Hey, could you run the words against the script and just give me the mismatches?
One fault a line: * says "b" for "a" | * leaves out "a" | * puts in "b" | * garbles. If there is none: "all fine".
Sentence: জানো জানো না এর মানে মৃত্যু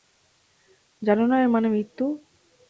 * leaves out "জানো"